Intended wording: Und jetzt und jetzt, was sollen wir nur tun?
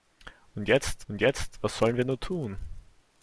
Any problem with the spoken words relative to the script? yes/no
no